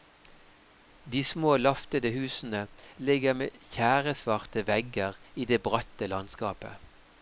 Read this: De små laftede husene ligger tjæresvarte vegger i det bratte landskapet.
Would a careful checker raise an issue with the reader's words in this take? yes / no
yes